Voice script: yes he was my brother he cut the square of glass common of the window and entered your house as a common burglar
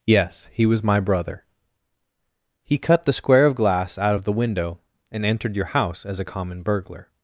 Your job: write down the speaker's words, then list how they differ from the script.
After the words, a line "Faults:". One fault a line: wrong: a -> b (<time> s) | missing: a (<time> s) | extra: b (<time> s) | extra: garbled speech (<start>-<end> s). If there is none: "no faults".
yes he was my brother he cut the square of glass out of the window and entered your house as a common burglar
Faults:
wrong: common -> out (4.0 s)